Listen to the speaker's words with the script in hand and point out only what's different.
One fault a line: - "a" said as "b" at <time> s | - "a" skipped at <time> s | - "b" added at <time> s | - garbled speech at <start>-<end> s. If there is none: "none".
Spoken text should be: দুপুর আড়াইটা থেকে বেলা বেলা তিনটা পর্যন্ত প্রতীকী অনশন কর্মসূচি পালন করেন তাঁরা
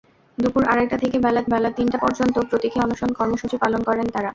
none